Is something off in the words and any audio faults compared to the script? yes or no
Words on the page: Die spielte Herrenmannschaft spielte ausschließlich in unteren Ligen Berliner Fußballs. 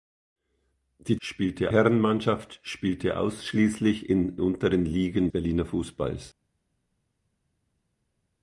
no